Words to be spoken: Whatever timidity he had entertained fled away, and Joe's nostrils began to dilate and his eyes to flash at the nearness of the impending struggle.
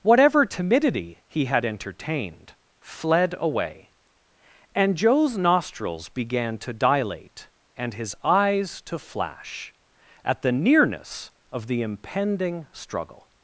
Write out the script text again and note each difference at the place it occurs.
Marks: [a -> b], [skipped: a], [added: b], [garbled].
Whatever timidity he had entertained fled away, and Joe's nostrils began to dilate and his eyes to flash at the nearness of the impending struggle.